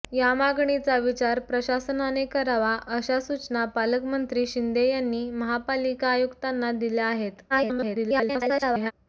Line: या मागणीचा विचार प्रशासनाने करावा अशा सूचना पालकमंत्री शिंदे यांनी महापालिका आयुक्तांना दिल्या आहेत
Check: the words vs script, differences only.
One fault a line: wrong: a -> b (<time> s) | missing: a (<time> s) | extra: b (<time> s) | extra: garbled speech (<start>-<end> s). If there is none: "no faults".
extra: garbled speech (7.5-8.9 s)